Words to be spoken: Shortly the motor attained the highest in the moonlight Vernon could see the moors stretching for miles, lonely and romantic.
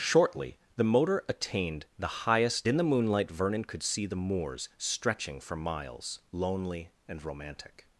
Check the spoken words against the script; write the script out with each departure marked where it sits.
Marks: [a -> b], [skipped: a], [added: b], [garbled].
Shortly the motor attained the highest in the moonlight Vernon could see the moors stretching for miles, lonely and romantic.